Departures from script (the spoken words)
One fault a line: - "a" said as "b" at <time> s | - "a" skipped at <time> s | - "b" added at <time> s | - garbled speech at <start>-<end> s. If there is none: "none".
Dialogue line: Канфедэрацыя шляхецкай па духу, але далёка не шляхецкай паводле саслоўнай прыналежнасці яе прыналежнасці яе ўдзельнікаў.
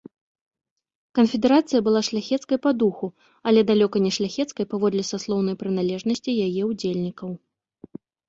- "была" added at 1.9 s
- "прыналежнасці яе" skipped at 6.6 s